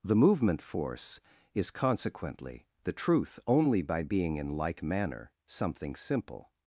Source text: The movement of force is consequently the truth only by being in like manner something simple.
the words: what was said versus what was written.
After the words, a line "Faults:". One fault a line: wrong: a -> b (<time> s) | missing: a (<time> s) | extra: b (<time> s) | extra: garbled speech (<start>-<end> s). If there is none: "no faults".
The movement force is consequently the truth only by being in like manner something simple.
Faults:
missing: of (0.6 s)